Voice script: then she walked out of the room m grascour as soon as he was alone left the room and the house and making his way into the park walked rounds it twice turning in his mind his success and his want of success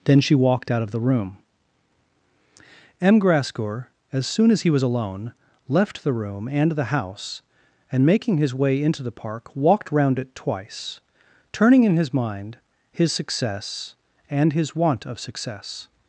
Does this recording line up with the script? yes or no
no